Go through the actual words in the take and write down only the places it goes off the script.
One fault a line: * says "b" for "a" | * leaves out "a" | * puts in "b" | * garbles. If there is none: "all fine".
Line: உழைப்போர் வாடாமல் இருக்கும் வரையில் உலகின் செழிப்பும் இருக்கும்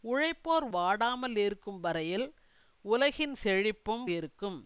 all fine